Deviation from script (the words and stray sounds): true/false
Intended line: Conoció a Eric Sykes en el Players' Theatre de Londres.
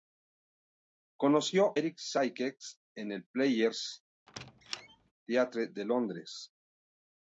true